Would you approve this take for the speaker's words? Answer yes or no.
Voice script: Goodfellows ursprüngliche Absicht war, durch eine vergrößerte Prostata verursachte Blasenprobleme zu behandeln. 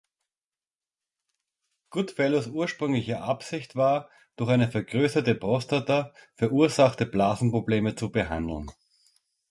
yes